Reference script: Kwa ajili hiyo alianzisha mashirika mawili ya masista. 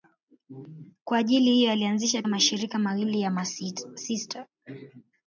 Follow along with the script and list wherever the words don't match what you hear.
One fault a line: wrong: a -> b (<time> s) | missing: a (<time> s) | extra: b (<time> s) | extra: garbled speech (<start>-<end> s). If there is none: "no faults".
no faults